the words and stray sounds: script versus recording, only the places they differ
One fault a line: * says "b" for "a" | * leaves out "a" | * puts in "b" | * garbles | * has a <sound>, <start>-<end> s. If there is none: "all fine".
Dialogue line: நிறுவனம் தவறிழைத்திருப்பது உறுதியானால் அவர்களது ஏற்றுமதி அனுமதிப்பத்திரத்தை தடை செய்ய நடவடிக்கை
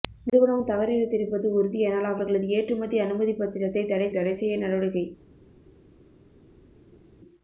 * puts in "தடை"